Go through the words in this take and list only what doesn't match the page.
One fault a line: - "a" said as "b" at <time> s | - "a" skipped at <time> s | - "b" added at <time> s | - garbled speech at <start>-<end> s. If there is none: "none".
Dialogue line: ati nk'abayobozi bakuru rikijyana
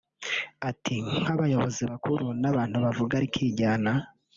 - "n'abantu bavuga" added at 2.4 s